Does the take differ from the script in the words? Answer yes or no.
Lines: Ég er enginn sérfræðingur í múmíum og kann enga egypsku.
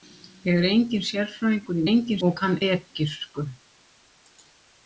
yes